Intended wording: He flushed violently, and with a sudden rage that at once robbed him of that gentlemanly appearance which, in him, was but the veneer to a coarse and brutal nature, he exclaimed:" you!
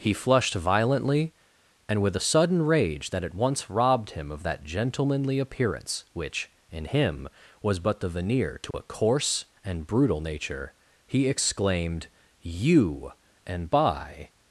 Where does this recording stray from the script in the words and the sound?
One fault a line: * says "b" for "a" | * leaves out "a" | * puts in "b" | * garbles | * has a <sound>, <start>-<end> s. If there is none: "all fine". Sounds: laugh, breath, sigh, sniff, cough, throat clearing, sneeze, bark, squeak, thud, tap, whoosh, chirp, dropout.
* has a dropout, 8.7-8.7 s
* puts in "and by"